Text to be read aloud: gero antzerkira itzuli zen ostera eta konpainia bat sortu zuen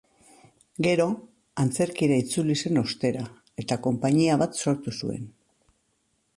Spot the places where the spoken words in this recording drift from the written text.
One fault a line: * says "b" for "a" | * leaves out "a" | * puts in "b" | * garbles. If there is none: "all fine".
all fine